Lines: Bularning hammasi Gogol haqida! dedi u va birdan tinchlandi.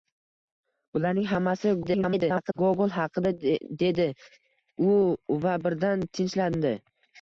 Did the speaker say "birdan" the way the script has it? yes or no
yes